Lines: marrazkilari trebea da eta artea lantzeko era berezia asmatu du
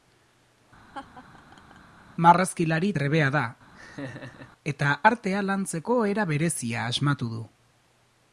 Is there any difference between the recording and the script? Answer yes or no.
no